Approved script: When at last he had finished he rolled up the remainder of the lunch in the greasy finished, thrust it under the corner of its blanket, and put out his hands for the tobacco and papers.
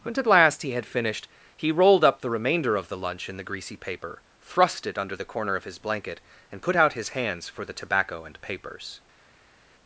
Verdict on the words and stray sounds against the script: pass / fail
fail